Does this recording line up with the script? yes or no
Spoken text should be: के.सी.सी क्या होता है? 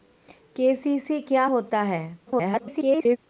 no